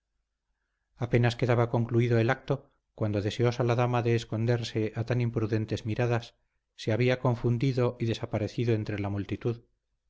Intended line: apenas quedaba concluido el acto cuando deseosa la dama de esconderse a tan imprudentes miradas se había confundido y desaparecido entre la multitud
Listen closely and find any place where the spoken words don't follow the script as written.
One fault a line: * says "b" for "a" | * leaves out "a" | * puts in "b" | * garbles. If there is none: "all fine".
all fine